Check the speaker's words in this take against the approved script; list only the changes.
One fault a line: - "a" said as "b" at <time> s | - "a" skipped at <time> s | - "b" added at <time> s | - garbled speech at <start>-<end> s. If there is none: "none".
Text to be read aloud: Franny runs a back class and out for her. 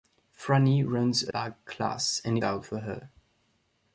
none